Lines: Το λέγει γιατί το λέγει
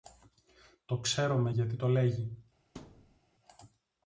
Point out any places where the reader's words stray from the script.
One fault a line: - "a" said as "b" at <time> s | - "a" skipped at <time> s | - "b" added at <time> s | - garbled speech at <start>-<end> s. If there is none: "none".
- "λέγει" said as "ξέρομε" at 1.0 s